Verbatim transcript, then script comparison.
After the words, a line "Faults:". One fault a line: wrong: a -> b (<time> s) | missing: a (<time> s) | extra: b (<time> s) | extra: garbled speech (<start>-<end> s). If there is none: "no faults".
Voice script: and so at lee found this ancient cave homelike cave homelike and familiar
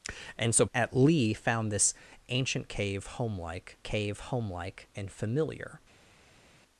and so at lee found this ancient cave homelike cave homelike and familiar
Faults:
no faults